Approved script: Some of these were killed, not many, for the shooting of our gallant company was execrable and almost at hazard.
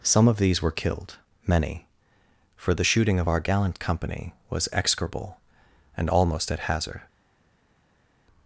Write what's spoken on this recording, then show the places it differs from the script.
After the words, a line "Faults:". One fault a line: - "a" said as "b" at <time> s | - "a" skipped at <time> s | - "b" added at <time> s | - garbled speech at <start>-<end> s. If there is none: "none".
Some of these were killed, many, for the shooting of our gallant company was execrable and almost at hazard.
Faults:
- "not" skipped at 1.2 s